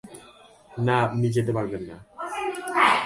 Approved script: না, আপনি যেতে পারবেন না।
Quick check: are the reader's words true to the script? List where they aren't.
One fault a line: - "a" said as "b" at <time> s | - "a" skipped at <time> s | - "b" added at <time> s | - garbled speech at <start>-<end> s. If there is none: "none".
none